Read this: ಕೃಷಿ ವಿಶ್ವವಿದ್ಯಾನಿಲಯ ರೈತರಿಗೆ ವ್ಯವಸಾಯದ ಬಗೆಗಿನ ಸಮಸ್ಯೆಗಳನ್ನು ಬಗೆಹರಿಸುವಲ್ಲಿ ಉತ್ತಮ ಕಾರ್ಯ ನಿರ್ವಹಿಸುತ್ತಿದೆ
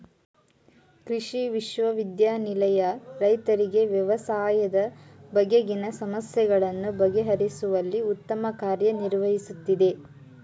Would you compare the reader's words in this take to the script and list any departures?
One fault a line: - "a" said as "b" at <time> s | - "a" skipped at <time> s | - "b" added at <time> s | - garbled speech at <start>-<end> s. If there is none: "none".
none